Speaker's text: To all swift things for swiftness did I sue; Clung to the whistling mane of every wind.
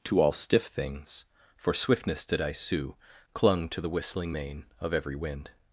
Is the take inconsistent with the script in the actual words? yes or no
yes